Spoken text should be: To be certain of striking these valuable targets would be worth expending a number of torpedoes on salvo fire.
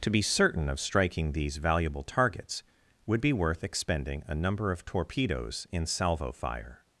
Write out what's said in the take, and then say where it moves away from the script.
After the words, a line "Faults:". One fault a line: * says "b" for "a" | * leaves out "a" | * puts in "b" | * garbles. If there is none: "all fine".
To be certain of striking these valuable targets would be worth expending a number of torpedoes in salvo fire.
Faults:
* says "in" for "on"